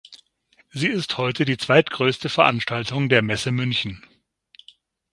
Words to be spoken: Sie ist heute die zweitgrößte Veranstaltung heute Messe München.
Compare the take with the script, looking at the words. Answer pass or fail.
fail